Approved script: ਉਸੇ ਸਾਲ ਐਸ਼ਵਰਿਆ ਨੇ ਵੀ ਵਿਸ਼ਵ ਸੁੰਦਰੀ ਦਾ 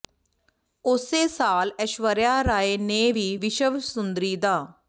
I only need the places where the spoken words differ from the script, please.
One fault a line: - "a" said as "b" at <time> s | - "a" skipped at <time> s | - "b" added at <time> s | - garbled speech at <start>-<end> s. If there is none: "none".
- "ਰਾਏ" added at 2.4 s